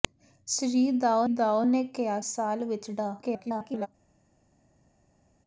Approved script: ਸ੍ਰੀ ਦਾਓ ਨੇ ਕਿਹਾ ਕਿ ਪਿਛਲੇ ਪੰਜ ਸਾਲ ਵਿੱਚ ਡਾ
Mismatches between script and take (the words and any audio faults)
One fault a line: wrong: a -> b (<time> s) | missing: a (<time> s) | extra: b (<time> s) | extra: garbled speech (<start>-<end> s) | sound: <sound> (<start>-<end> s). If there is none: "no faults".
extra: ਦਾਓ (1.3 s)
missing: ਕਿ ਪਿਛਲੇ ਪੰਜ (2.2 s)
extra: garbled speech (3.2-3.9 s)